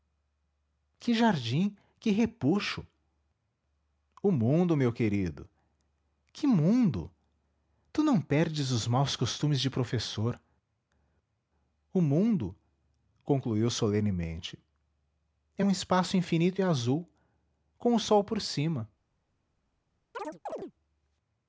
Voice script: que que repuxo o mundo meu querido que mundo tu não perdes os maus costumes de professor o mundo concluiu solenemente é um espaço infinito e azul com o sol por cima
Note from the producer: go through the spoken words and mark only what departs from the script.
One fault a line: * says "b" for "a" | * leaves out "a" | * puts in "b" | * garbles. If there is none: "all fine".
* puts in "jardim"